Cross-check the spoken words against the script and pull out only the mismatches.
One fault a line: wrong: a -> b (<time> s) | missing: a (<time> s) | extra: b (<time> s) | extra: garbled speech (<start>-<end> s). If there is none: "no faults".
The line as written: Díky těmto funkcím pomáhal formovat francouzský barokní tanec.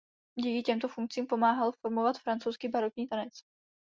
no faults